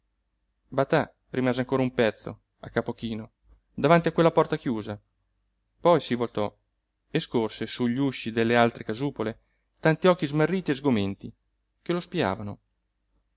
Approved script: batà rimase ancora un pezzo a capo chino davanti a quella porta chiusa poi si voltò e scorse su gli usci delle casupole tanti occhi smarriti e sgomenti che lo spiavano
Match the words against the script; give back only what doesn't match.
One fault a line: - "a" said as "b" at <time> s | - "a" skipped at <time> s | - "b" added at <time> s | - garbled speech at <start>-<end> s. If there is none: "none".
- "altre" added at 8.6 s